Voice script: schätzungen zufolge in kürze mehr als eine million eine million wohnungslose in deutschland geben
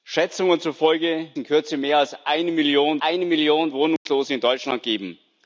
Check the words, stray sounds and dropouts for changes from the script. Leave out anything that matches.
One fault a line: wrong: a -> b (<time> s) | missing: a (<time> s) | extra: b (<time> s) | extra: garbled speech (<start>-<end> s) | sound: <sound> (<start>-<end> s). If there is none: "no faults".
sound: dropout (4.0-4.1 s)